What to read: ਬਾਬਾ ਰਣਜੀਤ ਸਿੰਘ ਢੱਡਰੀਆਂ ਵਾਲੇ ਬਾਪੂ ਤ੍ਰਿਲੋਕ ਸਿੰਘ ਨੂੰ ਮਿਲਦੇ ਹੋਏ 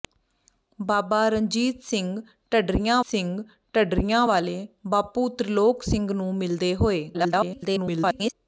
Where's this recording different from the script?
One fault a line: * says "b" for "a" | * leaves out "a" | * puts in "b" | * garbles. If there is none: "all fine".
* puts in "ਸਿੰਘ ਢੱਡਰੀਆਂ"
* garbles